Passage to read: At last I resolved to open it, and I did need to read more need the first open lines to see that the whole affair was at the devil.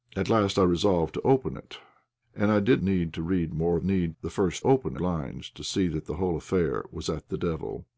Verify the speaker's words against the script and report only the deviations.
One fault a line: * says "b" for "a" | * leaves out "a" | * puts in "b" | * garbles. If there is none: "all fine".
all fine